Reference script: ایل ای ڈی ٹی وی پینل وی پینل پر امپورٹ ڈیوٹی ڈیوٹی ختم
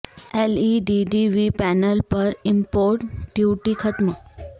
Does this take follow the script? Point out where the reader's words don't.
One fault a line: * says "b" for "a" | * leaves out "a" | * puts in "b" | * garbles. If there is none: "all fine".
* leaves out "وی پینل"
* leaves out "ڈیوٹی"